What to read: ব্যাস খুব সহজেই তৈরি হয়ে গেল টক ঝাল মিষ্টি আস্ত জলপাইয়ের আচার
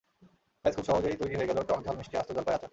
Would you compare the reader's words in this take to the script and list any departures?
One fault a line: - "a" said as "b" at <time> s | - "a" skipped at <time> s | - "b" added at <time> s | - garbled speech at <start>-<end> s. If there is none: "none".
none